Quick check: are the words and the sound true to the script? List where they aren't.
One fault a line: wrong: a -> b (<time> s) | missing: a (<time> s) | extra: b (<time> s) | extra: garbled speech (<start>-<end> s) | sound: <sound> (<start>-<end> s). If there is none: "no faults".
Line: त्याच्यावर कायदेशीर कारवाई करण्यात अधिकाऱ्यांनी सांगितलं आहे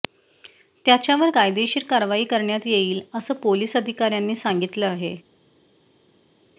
extra: येईल असं पोलीस (2.7 s)